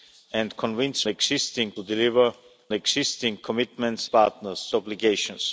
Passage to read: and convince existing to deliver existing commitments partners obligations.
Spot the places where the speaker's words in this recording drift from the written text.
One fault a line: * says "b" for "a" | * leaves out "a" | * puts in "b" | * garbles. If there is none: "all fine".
all fine